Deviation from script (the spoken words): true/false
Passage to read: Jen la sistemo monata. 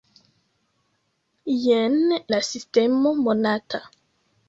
false